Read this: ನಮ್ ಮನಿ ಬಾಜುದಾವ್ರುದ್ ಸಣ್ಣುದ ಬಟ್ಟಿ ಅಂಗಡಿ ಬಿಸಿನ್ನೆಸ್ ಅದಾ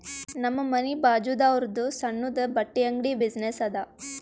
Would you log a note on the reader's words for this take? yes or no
no